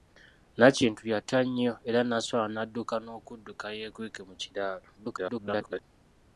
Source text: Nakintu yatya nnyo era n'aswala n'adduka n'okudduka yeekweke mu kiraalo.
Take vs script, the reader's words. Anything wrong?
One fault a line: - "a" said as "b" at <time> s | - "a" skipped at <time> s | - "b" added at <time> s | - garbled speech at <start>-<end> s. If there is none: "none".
- garbled speech at 5.0-5.8 s